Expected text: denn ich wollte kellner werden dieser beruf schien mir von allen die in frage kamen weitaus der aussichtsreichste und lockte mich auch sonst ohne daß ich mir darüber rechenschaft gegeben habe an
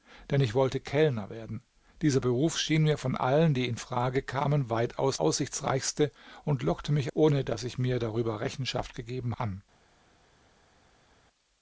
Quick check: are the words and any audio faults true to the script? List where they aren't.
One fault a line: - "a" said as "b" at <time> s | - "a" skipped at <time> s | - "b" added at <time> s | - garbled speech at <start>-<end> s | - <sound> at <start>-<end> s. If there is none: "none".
- "der" skipped at 5.2 s
- "auch sonst" skipped at 7.1 s
- "habe" skipped at 9.4 s